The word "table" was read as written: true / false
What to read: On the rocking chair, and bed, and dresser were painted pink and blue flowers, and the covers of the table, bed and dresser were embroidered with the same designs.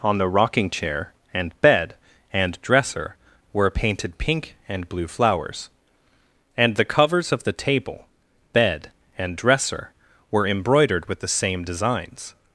true